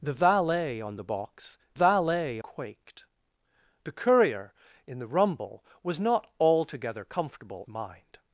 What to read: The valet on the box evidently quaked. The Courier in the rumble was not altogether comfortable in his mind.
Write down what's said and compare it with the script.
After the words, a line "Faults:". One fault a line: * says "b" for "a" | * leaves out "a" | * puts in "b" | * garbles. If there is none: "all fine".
The valet on the box valet quaked. The Courier in the rumble was not altogether comfortable mind.
Faults:
* says "valet" for "evidently"
* leaves out "in his"